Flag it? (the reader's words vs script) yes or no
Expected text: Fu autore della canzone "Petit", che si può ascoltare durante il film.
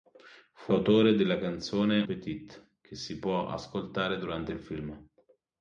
no